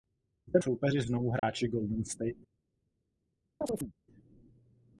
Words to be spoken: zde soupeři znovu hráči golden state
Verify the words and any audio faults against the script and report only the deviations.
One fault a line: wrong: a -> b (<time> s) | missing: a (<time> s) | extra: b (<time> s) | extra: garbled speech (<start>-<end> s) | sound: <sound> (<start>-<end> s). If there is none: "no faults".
sound: dropout (1.4-1.4 s)
sound: chirp (3.6-3.9 s)